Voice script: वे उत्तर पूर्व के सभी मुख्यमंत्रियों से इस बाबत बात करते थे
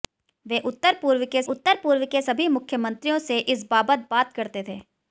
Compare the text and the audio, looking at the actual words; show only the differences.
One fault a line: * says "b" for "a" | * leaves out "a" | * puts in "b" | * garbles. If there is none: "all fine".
* puts in "उत्तर पूर्व के"